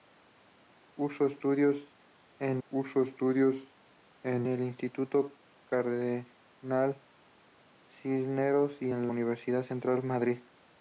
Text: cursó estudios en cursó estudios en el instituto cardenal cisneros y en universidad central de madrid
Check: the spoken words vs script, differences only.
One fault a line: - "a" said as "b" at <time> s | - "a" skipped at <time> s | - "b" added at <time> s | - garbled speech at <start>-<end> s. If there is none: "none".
none